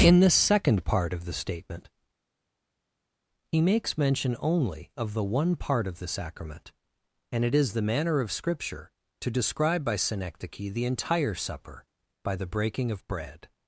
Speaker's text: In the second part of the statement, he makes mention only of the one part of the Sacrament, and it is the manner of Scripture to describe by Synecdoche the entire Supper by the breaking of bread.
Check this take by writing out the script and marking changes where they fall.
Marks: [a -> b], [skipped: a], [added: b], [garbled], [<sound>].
In the second part of the statement, he makes mention only of the one part of the Sacrament, and it is the manner of Scripture to describe by Synecdoche the entire Supper by the breaking of bread.